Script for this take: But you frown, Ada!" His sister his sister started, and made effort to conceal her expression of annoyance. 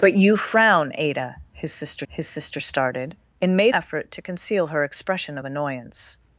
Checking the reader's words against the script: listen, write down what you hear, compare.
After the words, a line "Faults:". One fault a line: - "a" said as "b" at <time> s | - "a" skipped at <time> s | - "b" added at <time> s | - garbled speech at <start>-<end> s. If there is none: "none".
But you frown, Ada!" His sister his sister started, and made effort to conceal her expression of annoyance.
Faults:
none